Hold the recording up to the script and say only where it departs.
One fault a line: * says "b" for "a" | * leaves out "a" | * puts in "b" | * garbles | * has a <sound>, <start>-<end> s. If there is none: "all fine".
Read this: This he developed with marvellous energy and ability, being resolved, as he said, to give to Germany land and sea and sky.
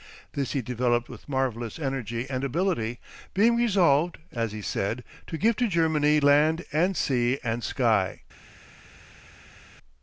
all fine